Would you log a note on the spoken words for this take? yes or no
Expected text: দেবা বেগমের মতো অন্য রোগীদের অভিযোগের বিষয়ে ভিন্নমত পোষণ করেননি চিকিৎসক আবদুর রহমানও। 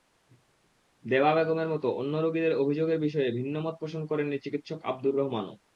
no